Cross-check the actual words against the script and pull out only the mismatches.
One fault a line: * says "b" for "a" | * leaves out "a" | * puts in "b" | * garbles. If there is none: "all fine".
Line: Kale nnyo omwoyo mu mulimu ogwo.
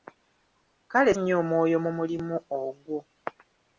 all fine